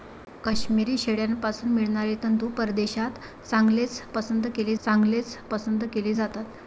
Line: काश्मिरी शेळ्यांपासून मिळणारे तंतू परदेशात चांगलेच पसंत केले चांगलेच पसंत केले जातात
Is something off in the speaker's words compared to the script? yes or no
no